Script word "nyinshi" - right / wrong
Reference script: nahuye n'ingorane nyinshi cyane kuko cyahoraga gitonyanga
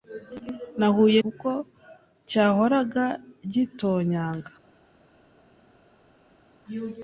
wrong